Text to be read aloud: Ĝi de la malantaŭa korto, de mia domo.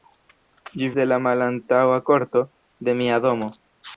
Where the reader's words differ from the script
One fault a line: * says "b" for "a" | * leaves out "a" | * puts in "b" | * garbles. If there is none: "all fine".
all fine